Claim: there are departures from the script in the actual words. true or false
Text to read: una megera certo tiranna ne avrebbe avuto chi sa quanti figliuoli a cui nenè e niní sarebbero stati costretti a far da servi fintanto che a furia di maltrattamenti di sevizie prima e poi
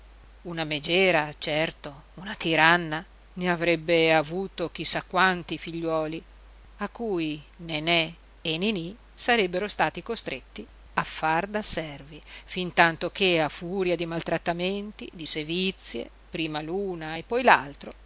true